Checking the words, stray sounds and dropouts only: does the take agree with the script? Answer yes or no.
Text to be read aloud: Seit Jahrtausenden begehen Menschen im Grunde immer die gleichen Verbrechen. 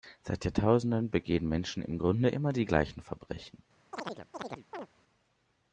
no